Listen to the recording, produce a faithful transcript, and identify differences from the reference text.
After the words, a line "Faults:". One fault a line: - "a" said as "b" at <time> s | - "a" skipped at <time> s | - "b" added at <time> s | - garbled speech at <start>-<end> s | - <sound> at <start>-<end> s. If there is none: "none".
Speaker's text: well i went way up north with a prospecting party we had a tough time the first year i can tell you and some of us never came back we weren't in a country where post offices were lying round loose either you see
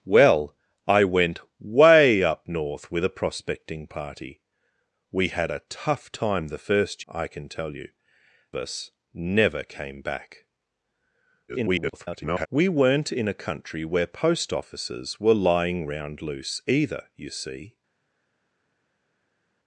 well i went way up north with a prospecting party we had a tough time the first i can tell you us never came back [garbled] we weren't in a country where post offices were lying round loose either you see
Faults:
- "year" skipped at 7.0 s
- "and some of" skipped at 7.9 s
- garbled speech at 11.5-12.5 s